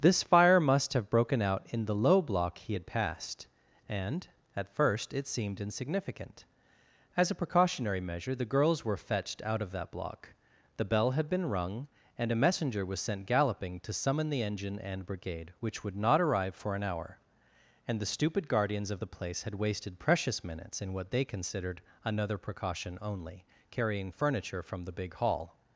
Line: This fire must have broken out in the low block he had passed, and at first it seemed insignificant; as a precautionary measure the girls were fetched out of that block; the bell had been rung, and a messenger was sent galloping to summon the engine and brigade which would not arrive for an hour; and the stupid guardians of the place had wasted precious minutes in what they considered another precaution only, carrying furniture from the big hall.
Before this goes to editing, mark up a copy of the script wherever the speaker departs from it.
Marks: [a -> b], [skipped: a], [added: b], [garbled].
This fire must have broken out in the low block he had passed, and at first it seemed insignificant; as a precautionary measure the girls were fetched out of that block; the bell had been rung, and a messenger was sent galloping to summon the engine and brigade which would not arrive for an hour; and the stupid guardians of the place had wasted precious minutes in what they considered another precaution only, carrying furniture from the big hall.